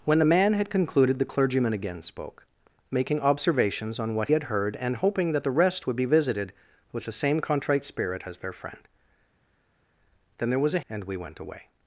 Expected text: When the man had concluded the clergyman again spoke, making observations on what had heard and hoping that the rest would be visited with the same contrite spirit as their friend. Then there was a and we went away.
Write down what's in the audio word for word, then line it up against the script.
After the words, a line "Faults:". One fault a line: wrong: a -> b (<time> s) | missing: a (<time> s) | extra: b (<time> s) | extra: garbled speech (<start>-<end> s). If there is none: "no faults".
When the man had concluded the clergyman again spoke, making observations on what had heard and hoping that the rest would be visited with the same contrite spirit as their friend. Then there was a and we went away.
Faults:
no faults